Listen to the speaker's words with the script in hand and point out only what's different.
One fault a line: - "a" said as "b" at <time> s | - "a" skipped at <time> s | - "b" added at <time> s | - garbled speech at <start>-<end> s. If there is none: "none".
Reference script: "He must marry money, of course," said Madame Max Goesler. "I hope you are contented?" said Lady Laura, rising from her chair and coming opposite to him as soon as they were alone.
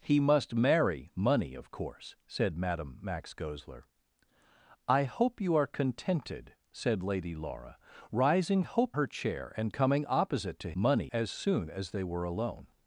- "from" said as "hope" at 8.6 s
- "him" said as "money" at 10.7 s